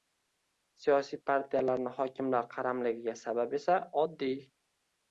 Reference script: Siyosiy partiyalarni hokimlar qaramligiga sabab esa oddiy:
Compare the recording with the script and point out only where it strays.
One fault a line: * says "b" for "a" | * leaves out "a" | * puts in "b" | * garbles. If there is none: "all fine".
all fine